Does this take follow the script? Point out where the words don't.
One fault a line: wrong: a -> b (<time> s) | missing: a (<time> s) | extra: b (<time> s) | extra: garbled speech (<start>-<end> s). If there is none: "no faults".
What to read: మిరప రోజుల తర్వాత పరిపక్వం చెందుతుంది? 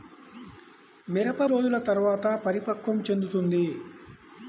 no faults